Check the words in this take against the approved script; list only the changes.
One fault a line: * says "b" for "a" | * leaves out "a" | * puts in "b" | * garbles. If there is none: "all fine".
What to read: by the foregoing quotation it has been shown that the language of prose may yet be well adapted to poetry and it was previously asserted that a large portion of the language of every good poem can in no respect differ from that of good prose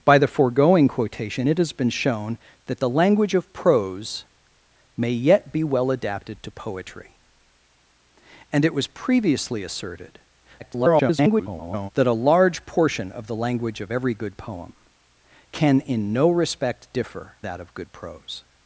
* garbles
* leaves out "from"